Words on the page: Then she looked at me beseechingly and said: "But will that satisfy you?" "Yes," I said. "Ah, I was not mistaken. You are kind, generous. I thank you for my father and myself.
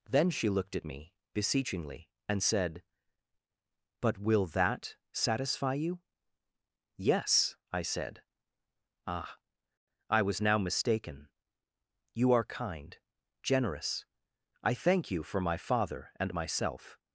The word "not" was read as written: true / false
false